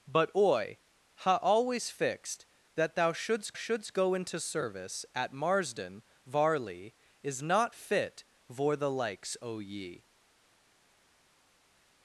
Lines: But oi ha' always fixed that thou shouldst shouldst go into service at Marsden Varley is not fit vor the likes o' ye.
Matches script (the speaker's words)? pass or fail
pass